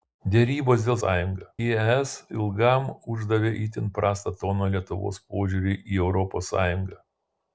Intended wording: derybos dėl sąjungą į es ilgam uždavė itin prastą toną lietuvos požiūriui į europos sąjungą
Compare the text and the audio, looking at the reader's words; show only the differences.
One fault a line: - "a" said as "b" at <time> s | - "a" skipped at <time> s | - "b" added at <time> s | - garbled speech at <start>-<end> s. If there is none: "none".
none